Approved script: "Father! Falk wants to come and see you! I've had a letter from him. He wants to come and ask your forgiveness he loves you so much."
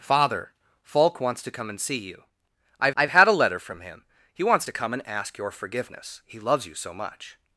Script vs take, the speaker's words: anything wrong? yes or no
yes